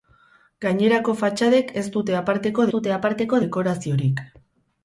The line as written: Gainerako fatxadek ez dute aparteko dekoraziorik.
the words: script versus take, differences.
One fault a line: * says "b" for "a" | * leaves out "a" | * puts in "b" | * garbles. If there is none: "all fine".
* puts in "dute aparteko"